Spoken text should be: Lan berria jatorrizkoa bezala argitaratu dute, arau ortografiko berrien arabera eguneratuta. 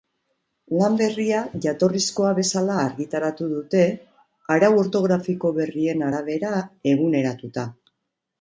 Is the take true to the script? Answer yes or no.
yes